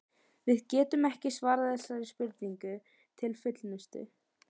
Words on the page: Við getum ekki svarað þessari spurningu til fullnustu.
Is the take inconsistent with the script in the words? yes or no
no